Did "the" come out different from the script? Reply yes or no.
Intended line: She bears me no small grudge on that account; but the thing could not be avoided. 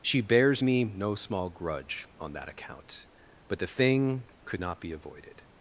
no